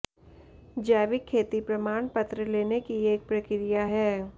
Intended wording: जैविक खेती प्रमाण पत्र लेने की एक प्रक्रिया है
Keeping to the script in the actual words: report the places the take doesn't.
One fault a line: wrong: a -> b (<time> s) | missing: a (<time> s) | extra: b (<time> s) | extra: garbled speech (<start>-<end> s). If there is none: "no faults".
no faults